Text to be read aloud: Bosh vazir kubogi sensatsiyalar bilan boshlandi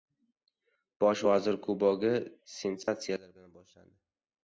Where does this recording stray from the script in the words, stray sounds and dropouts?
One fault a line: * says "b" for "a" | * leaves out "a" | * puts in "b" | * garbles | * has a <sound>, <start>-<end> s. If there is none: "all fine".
* has a dropout, 2.8-2.9 s